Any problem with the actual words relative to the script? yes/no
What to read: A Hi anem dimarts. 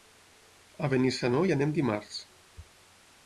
yes